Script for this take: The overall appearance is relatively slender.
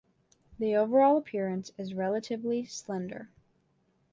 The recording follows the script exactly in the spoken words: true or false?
true